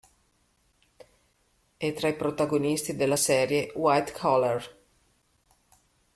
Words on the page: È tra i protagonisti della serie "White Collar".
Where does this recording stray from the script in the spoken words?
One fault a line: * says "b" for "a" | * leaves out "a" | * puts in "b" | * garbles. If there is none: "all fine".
all fine